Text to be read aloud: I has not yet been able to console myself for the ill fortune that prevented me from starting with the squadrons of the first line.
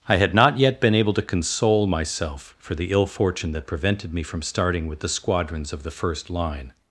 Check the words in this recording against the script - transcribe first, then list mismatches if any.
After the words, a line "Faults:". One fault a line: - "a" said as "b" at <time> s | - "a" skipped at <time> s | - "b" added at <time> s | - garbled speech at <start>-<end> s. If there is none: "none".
I had not yet been able to console myself for the ill fortune that prevented me from starting with the squadrons of the first line.
Faults:
- "has" said as "had" at 0.2 s